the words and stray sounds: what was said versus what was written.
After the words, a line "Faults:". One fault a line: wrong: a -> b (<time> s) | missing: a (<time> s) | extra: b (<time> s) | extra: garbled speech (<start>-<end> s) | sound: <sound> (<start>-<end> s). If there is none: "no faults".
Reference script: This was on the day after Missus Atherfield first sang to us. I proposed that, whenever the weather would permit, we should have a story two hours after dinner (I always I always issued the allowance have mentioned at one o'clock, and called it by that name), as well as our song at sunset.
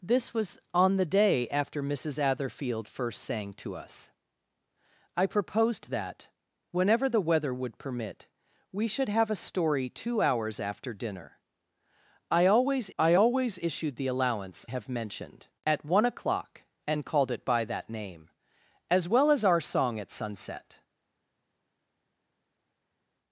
This was on the day after Missus Atherfield first sang to us. I proposed that, whenever the weather would permit, we should have a story two hours after dinner (I always I always issued the allowance have mentioned at one o'clock, and called it by that name), as well as our song at sunset.
Faults:
no faults